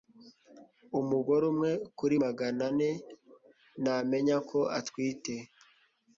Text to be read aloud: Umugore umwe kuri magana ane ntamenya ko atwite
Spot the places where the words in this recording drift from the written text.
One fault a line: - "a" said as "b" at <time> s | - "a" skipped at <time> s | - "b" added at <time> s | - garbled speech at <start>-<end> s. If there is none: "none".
none